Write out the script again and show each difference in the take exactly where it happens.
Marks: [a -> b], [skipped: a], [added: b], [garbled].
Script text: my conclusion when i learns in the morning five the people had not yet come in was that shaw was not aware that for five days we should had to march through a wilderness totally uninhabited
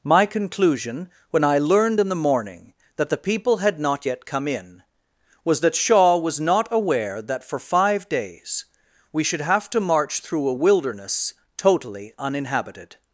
my conclusion when i [learns -> learned] in the morning [five -> that] the people had not yet come in was that shaw was not aware that for five days we should [had -> have] to march through a wilderness totally uninhabited